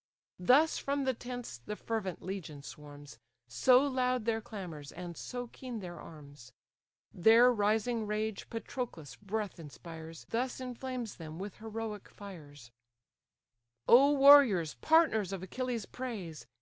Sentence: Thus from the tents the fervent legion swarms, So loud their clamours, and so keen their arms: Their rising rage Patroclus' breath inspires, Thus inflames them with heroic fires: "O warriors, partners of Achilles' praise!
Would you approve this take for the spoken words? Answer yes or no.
yes